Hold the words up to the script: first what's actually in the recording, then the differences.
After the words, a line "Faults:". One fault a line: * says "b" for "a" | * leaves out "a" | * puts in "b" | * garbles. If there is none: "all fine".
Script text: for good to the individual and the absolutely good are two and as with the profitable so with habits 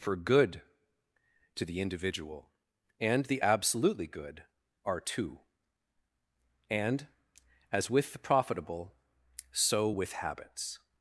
for good to the individual and the absolutely good are two and as with the profitable so with habits
Faults:
all fine